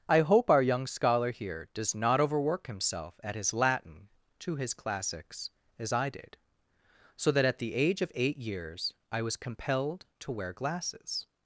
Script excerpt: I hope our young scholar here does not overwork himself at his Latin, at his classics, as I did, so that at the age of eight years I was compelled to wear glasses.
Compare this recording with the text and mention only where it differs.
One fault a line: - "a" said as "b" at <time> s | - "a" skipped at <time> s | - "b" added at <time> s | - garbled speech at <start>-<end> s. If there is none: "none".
- "at" said as "to" at 4.4 s